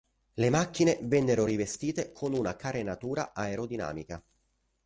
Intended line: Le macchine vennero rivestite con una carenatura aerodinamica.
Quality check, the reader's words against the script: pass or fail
pass